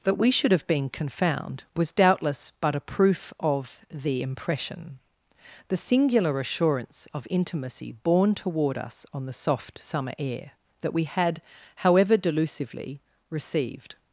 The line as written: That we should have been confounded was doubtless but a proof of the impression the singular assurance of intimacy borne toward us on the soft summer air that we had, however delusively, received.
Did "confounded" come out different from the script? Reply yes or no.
yes